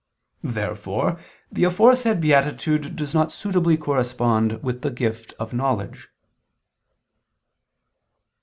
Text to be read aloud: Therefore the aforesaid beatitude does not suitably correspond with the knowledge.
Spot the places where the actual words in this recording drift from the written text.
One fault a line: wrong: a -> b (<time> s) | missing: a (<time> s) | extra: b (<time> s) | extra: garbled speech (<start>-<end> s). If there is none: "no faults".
extra: gift of (4.9 s)